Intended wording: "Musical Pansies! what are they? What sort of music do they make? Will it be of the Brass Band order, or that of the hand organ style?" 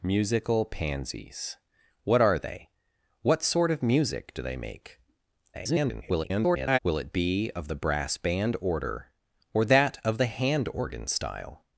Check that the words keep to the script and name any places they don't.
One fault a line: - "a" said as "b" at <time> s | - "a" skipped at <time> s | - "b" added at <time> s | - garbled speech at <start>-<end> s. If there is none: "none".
- garbled speech at 5.5-6.8 s